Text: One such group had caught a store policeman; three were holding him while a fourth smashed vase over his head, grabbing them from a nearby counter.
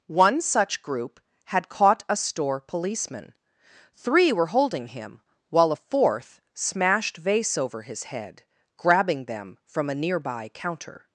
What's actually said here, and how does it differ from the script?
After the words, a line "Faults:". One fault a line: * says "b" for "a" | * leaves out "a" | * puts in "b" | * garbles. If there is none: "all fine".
One such group had caught a store policeman; three were holding him while a fourth smashed vase over his head, grabbing them from a nearby counter.
Faults:
all fine